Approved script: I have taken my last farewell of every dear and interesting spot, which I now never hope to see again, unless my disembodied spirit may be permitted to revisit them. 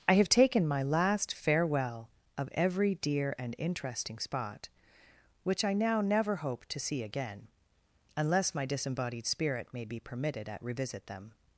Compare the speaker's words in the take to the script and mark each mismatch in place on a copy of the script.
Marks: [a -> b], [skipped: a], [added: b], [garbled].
I have taken my last farewell of every dear and interesting spot, which I now never hope to see again, unless my disembodied spirit may be permitted [to -> at] revisit them.